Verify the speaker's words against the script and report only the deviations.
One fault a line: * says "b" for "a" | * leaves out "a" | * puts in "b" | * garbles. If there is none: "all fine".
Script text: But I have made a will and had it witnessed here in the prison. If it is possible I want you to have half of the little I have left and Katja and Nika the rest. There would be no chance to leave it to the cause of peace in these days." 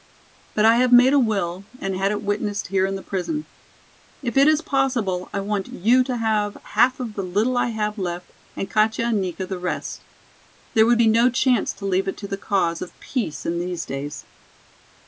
all fine